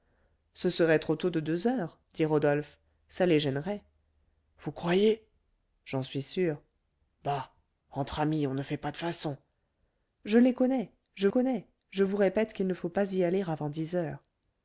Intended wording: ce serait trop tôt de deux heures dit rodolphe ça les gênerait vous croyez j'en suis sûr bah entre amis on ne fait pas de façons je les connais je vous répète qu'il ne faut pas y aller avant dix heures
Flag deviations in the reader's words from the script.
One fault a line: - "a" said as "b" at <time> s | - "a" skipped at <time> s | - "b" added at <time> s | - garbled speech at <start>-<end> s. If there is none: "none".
- "connais je" added at 11.3 s